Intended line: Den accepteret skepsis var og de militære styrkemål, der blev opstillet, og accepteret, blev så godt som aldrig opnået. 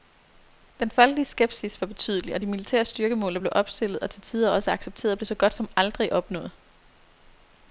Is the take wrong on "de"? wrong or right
right